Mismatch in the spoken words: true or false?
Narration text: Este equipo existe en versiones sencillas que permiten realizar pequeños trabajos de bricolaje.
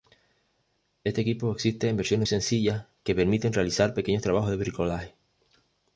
false